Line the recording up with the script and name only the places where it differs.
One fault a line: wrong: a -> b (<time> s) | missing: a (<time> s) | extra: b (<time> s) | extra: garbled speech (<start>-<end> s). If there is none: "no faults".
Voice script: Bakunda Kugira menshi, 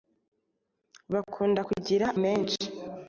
no faults